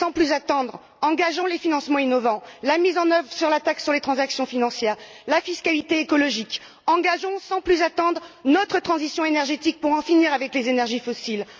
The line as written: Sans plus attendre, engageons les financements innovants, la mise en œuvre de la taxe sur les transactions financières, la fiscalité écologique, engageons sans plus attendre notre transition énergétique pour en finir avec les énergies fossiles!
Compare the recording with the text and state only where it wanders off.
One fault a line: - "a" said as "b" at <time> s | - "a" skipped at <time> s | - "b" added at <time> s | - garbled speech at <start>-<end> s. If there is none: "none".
none